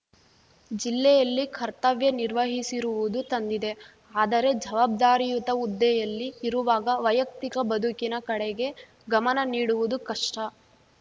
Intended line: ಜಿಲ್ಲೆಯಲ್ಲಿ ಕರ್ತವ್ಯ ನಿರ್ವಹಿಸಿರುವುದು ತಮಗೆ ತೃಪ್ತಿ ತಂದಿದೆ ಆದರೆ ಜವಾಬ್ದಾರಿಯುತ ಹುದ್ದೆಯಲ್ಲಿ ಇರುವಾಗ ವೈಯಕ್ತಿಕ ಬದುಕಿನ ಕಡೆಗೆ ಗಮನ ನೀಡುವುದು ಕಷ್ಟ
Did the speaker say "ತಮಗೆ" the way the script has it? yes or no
no